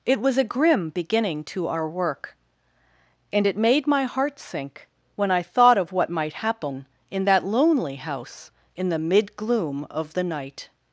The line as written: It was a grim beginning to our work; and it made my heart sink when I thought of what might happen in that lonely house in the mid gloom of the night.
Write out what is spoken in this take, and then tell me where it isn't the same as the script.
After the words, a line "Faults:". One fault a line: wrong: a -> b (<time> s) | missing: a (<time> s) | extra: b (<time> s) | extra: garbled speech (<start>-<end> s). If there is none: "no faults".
It was a grim beginning to our work; and it made my heart sink when I thought of what might happen in that lonely house in the mid gloom of the night.
Faults:
no faults